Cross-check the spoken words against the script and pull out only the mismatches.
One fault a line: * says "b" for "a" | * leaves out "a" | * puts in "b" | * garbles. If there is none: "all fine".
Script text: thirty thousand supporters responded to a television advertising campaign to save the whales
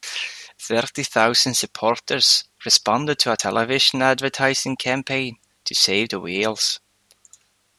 all fine